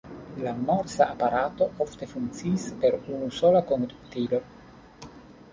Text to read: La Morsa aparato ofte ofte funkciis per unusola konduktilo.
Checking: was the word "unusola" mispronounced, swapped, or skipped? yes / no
no